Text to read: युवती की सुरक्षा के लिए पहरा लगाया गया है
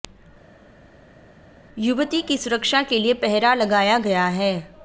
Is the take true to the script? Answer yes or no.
yes